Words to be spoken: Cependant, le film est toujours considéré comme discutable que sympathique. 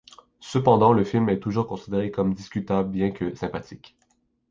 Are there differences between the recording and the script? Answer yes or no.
yes